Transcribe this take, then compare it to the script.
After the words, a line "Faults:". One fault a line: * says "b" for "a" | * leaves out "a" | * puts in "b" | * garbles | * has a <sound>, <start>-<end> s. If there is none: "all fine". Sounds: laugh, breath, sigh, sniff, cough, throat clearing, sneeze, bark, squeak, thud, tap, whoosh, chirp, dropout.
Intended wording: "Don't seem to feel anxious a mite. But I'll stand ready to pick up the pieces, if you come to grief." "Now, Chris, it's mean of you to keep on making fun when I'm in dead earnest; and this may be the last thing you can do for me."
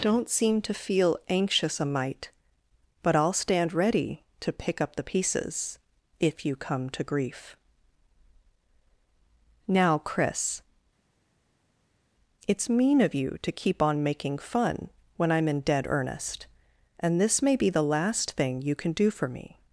"Don't seem to feel anxious a mite. But I'll stand ready to pick up the pieces, if you come to grief." "Now, Chris, it's mean of you to keep on making fun when I'm in dead earnest; and this may be the last thing you can do for me."
Faults:
all fine